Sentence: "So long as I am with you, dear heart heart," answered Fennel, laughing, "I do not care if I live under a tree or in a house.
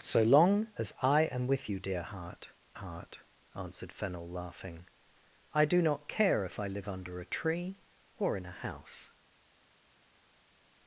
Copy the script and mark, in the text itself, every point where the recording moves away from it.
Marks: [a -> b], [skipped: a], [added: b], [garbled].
"So long as I am with you, dear heart heart," answered Fennel, laughing, "I do not care if I live under a tree or in a house.